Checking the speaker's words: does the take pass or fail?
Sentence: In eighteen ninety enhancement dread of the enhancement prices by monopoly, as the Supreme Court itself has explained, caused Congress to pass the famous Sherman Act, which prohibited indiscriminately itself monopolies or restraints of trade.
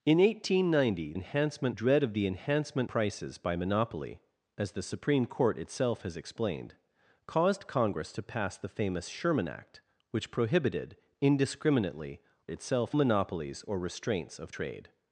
pass